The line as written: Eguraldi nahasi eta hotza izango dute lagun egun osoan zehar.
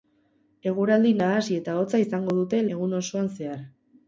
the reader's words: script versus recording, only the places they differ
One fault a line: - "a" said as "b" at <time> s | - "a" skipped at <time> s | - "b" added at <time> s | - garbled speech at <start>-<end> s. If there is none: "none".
- "lagun" skipped at 2.6 s